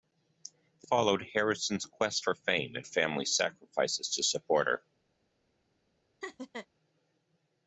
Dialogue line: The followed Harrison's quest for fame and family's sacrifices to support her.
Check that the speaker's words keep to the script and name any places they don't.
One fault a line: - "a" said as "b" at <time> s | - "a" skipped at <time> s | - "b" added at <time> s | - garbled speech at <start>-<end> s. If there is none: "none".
none